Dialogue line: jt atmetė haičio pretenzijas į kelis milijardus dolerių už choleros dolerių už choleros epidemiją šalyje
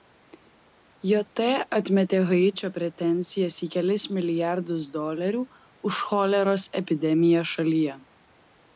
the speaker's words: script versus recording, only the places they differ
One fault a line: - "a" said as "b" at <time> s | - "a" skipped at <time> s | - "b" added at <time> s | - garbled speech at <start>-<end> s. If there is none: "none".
- "dolerių už choleros" skipped at 6.7 s